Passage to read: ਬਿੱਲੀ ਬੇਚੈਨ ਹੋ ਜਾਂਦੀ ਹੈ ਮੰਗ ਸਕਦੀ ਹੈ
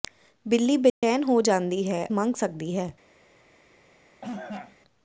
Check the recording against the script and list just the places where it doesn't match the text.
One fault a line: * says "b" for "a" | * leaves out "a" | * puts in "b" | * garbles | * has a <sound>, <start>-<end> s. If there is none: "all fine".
* has a dropout, 0.9-1.0 s
* has a cough, 4.2-4.8 s